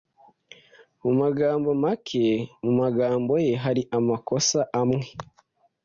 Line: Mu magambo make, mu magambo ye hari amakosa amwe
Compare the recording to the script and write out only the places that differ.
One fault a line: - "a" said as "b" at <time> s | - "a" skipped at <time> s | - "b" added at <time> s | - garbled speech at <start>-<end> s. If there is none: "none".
none